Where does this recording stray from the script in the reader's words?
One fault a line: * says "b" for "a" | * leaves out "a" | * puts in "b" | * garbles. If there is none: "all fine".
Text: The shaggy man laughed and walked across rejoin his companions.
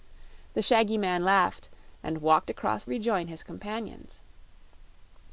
all fine